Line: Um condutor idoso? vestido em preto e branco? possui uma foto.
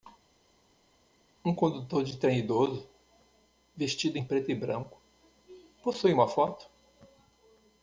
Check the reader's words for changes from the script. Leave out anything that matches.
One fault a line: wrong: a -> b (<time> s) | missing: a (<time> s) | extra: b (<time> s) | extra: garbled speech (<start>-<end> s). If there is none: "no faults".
extra: de trem (2.0 s)